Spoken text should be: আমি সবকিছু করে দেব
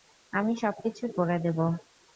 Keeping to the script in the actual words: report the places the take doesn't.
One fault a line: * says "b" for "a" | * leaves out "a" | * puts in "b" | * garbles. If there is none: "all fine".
all fine